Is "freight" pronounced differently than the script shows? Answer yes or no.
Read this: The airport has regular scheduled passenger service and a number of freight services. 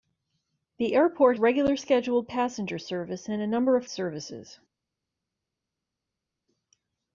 yes